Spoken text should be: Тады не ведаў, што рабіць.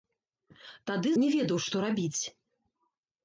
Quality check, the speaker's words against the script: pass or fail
pass